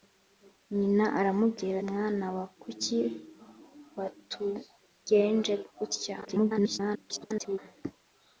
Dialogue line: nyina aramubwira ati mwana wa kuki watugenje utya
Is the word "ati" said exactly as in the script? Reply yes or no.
no